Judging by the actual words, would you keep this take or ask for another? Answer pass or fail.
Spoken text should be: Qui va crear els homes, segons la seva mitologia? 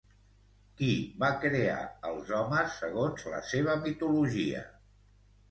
pass